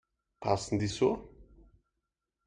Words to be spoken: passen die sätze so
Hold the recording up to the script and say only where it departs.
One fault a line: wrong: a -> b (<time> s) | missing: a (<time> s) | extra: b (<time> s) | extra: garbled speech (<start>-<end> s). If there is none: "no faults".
missing: sätze (0.9 s)